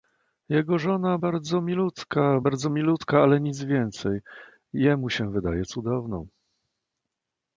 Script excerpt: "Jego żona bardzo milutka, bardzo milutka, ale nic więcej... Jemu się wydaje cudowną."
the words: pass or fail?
pass